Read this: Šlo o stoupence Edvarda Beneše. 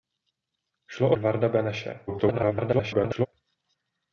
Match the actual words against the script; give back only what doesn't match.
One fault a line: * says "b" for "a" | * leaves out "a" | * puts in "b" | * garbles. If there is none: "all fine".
* leaves out "stoupence"
* garbles